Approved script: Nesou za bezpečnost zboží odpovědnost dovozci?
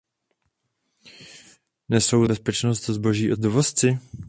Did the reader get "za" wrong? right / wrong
wrong